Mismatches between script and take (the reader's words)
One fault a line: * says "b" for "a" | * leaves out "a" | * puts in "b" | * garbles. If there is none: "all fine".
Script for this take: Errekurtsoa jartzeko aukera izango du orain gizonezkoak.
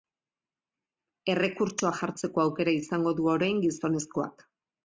all fine